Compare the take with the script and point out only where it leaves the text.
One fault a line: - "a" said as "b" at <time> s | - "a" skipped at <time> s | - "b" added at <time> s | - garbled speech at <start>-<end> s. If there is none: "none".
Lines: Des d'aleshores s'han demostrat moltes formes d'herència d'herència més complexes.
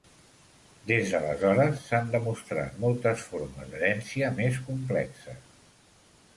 - "d'herència" skipped at 4.3 s